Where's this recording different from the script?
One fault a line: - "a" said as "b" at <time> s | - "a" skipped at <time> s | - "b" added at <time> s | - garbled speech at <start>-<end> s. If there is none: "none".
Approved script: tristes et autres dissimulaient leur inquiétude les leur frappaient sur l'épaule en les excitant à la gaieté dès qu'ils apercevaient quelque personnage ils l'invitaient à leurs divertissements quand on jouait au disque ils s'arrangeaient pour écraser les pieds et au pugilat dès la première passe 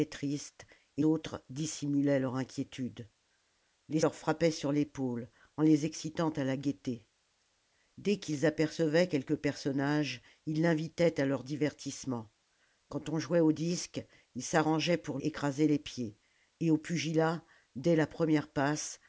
none